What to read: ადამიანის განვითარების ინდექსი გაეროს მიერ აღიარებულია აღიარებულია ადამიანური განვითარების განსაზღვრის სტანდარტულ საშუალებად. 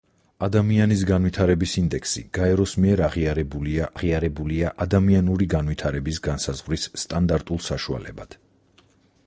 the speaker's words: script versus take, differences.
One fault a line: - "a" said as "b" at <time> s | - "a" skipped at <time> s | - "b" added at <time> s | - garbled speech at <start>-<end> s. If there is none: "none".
none